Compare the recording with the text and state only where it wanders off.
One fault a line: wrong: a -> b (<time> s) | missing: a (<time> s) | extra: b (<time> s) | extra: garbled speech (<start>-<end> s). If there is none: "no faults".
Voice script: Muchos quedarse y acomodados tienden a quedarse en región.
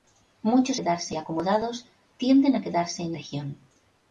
no faults